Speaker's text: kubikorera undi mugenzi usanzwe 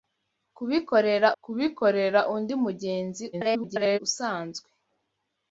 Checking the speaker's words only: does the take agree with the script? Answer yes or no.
no